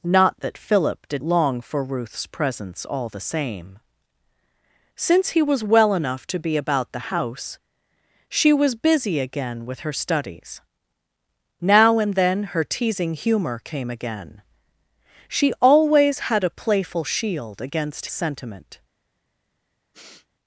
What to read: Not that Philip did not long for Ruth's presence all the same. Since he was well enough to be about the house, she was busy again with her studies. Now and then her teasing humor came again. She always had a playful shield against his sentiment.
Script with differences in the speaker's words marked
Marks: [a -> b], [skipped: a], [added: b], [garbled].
Not that Philip did [skipped: not] long for Ruth's presence all the same. Since he was well enough to be about the house, she was busy again with her studies. Now and then her teasing humor came again. She always had a playful shield against [skipped: his] sentiment.